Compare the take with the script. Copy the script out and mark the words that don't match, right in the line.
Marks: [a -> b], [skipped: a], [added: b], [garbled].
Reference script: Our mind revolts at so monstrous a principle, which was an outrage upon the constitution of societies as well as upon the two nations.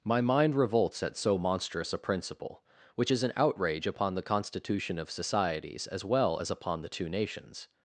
[Our -> My] mind revolts at so monstrous a principle, which [was -> is] an outrage upon the constitution of societies as well as upon the two nations.